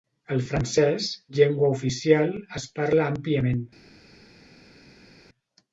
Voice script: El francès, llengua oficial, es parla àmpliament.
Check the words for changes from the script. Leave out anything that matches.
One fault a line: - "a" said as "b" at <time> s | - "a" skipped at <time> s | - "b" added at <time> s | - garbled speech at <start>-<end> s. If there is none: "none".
none